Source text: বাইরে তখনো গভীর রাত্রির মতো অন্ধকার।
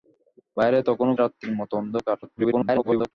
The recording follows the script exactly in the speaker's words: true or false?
false